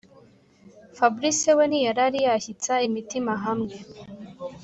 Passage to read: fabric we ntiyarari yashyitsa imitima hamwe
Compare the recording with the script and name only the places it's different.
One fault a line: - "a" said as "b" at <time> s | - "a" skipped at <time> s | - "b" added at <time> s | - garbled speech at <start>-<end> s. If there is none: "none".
none